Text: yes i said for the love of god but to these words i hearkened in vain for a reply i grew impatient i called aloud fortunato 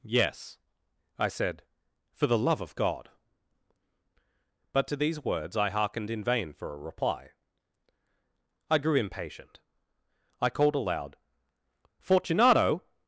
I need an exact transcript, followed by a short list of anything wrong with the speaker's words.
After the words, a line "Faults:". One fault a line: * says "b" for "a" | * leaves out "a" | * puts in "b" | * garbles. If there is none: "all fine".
yes i said for the love of god but to these words i hearkened in vain for a reply i grew impatient i called aloud fortunato
Faults:
all fine